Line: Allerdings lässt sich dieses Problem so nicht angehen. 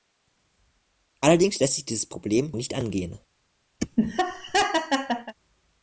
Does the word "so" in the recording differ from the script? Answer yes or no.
yes